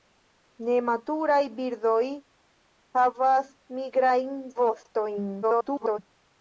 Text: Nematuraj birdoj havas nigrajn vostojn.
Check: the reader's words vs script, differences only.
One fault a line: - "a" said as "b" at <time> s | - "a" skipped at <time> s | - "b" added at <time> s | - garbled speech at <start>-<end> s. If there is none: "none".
- garbled speech at 5.4-6.0 s